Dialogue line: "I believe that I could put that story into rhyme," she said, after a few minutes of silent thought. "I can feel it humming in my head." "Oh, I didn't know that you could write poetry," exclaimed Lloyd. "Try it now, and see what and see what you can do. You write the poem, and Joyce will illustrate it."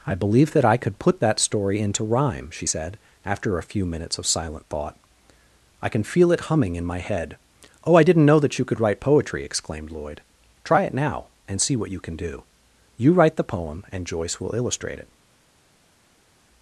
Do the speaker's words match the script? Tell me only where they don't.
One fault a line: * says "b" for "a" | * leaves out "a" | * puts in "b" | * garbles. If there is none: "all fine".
* leaves out "and see what"